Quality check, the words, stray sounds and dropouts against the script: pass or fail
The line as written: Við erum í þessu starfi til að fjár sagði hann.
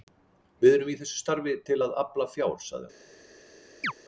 fail